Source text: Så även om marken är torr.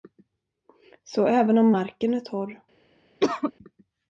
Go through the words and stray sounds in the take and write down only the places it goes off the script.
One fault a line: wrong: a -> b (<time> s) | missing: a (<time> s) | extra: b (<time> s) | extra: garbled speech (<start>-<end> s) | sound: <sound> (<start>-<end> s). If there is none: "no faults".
sound: cough (3.2-3.5 s)